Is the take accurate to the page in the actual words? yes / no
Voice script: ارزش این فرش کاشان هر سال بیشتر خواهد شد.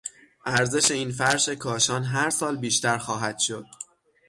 yes